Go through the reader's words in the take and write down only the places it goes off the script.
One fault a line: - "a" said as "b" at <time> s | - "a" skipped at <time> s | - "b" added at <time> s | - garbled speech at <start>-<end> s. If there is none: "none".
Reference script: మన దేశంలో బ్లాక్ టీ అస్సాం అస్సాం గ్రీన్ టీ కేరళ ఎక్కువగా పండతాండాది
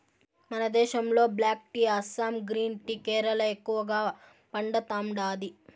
- "అస్సాం" skipped at 2.4 s